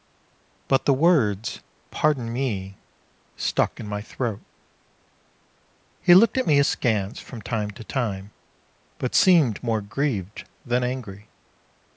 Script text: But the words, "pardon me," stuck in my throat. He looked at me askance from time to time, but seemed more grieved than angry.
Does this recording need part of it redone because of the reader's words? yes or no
no